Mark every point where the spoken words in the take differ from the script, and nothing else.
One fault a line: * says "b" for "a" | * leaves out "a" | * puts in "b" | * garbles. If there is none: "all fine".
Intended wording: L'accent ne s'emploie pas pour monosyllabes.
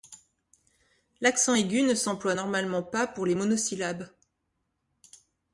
* puts in "aigu"
* puts in "normalement"
* puts in "les"